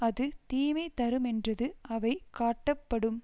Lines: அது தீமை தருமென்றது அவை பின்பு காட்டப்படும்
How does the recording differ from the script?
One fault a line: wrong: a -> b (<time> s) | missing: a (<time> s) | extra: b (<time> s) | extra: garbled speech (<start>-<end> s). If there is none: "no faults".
missing: பின்பு (2.1 s)